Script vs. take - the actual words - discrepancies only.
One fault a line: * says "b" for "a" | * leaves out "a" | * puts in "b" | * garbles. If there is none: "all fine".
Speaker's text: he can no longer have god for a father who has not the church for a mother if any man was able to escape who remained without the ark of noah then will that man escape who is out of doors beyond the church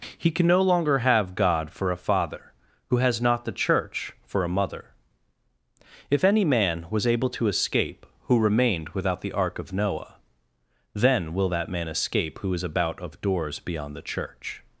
* says "about" for "out"